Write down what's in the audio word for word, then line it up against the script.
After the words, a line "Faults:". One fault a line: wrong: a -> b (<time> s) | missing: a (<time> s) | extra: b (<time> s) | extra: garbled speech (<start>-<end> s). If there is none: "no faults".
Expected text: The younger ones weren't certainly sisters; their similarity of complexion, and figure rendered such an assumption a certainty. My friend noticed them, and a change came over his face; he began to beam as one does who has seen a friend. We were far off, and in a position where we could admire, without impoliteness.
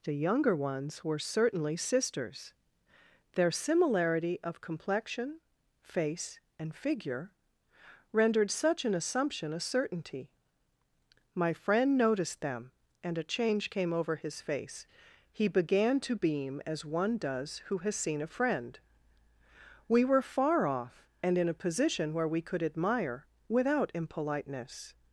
The younger ones were certainly sisters; their similarity of complexion, face and figure rendered such an assumption a certainty. My friend noticed them, and a change came over his face; he began to beam as one does who has seen a friend. We were far off, and in a position where we could admire, without impoliteness.
Faults:
wrong: weren't -> were (1.0 s)
extra: face (5.8 s)